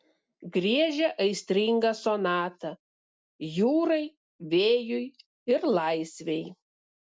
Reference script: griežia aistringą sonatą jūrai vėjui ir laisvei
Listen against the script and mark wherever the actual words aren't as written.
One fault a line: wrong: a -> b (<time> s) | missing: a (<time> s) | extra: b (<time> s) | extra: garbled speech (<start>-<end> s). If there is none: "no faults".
no faults